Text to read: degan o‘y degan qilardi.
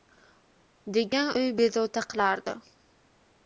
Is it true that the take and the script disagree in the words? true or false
true